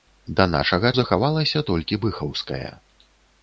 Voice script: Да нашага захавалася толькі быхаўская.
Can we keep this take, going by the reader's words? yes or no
yes